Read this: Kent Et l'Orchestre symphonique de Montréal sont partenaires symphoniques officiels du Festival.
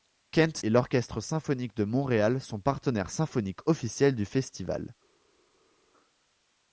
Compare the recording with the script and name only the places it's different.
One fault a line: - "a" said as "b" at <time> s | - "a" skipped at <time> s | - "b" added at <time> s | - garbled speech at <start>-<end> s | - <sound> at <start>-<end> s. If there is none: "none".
none